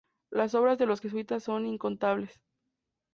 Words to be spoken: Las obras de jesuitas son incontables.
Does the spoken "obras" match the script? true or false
true